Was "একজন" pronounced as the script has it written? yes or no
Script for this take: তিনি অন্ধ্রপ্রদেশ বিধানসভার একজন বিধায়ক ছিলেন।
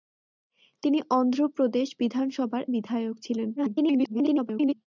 no